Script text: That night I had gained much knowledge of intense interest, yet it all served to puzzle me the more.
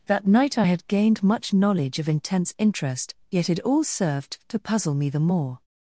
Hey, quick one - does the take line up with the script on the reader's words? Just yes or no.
yes